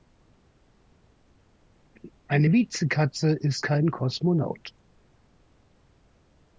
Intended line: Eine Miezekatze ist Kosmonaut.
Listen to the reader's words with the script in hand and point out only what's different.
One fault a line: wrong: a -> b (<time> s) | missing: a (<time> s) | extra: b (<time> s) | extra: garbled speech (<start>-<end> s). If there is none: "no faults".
extra: kein (3.6 s)